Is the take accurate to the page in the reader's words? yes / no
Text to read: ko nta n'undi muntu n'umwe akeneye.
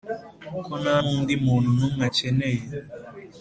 yes